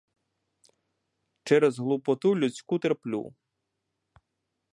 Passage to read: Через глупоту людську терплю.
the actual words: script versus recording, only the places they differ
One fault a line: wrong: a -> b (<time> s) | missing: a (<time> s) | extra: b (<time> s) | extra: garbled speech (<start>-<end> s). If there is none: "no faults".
no faults